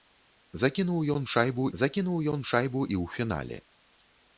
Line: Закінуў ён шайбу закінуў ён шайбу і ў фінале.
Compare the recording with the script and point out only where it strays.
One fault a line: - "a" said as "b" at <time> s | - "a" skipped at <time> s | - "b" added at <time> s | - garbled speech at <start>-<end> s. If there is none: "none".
none